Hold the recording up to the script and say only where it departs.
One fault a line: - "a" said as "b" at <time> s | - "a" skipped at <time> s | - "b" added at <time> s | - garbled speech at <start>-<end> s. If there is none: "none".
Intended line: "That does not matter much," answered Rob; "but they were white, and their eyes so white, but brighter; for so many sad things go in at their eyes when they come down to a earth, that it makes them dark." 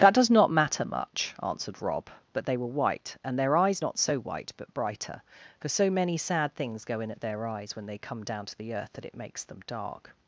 - "not" added at 3.8 s
- "a" said as "the" at 8.6 s